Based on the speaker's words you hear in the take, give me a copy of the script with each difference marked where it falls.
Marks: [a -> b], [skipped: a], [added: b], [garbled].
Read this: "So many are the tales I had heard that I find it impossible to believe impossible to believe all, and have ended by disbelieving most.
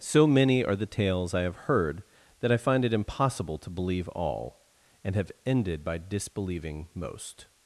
"So many are the tales I [had -> have] heard that I find it impossible to believe [skipped: impossible to believe] all, and have ended by disbelieving most.